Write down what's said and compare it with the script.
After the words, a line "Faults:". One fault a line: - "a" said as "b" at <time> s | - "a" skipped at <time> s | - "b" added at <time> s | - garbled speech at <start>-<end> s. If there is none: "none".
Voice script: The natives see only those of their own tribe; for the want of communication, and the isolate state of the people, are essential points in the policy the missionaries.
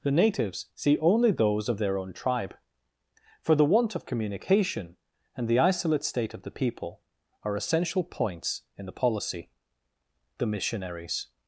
The natives see only those of their own tribe; for the want of communication, and the isolate state of the people, are essential points in the policy the missionaries.
Faults:
none